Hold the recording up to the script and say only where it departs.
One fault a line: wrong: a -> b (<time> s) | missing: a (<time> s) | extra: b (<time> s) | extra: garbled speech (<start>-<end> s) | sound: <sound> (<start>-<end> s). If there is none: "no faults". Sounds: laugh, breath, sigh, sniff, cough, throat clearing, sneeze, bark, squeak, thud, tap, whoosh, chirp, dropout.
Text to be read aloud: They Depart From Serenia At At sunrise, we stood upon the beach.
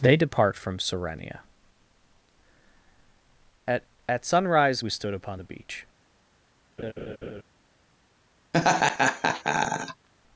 sound: laugh (6.8-7.4 s)
sound: laugh (8.5-10.1 s)